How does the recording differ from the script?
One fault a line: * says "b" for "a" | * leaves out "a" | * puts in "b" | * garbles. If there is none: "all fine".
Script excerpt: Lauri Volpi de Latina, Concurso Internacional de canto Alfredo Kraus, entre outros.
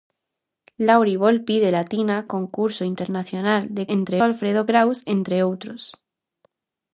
* says "entre" for "canto"